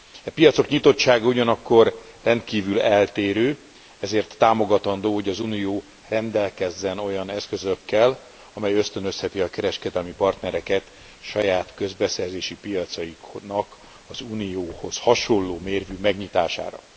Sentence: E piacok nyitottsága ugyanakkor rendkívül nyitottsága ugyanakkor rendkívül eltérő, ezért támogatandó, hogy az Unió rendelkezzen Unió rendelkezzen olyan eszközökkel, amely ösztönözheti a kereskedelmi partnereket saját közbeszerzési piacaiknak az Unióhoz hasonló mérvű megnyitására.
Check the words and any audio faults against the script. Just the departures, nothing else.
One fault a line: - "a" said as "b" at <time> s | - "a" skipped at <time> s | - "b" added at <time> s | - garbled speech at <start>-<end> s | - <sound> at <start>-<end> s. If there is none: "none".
- "nyitottsága ugyanakkor rendkívül" skipped at 2.8 s
- "Unió rendelkezzen" skipped at 7.0 s